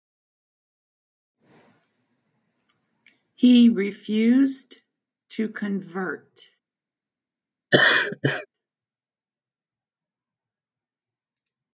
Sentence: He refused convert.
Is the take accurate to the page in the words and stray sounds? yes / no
no